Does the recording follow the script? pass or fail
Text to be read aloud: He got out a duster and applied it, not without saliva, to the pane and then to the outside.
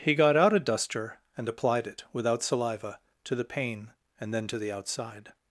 fail